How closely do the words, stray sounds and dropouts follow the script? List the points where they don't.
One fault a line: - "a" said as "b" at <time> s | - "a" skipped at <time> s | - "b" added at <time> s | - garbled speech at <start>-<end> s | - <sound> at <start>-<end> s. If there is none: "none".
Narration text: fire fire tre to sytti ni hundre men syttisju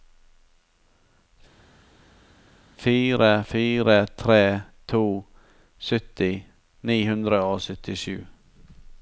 - "men" said as "og" at 7.5 s